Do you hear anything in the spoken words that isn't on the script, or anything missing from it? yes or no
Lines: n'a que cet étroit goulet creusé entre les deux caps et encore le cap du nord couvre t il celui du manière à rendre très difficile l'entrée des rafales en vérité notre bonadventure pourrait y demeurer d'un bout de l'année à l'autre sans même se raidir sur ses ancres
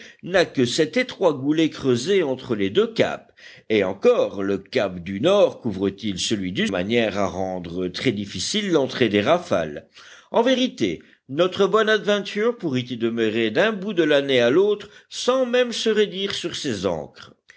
no